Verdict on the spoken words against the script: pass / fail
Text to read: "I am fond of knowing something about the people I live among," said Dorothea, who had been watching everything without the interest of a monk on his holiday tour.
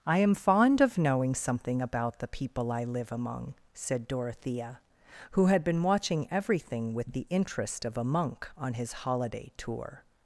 fail